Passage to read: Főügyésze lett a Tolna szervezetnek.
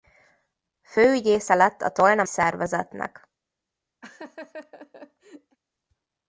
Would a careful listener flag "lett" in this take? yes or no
no